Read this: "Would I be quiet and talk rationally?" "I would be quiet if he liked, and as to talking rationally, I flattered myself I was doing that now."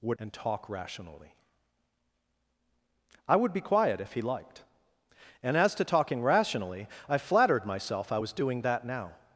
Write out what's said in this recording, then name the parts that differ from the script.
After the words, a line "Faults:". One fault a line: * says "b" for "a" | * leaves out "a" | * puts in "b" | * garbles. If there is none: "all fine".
"Would and talk rationally?" "I would be quiet if he liked, and as to talking rationally, I flattered myself I was doing that now."
Faults:
* leaves out "I be quiet"